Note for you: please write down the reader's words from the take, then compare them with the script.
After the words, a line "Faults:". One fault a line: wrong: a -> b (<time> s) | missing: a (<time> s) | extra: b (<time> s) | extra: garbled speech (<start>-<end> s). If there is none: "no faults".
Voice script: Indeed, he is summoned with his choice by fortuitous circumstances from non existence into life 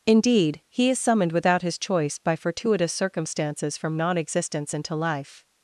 Indeed, he is summoned without his choice by fortuitous circumstances from non existence into life
Faults:
wrong: with -> without (1.3 s)